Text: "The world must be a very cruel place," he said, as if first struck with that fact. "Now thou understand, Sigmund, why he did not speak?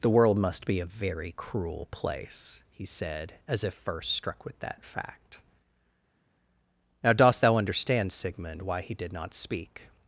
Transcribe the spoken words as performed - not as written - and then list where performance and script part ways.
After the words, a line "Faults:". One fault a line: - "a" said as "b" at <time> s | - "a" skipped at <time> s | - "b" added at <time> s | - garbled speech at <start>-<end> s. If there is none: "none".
"The world must be a very cruel place," he said, as if first struck with that fact. "Now dost thou understand, Sigmund, why he did not speak?
Faults:
- "dost" added at 7.1 s